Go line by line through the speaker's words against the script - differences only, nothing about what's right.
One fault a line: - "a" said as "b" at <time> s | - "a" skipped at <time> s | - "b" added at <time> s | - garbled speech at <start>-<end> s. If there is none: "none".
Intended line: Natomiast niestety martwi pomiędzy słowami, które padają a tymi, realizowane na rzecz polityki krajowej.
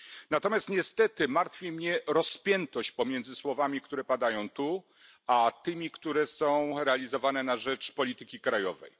- "mnie rozpiętość" added at 1.7 s
- "tu" added at 4.5 s
- "które są" added at 5.9 s